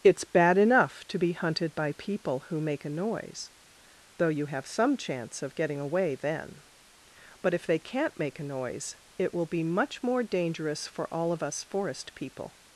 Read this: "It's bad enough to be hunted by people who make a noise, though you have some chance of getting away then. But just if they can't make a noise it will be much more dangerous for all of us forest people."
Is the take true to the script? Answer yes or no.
no